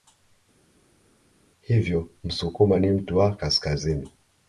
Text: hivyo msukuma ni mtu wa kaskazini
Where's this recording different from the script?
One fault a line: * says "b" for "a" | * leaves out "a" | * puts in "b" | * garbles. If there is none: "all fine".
all fine